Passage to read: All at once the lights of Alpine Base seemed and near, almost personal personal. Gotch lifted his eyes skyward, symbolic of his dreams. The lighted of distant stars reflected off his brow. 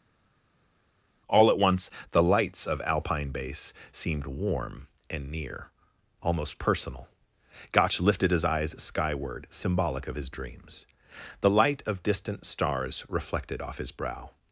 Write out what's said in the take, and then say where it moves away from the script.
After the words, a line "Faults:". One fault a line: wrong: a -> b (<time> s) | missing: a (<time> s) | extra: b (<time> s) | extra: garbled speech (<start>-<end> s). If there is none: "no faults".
All at once the lights of Alpine Base seemed warm and near, almost personal. Gotch lifted his eyes skyward, symbolic of his dreams. The light of distant stars reflected off his brow.
Faults:
extra: warm (4.3 s)
missing: personal (7.1 s)
wrong: lighted -> light (11.5 s)